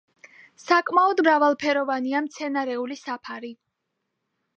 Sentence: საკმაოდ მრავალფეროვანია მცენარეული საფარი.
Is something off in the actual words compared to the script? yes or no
no